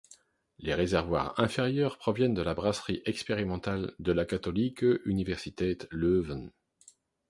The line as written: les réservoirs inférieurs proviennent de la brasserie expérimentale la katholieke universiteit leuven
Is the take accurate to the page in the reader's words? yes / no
no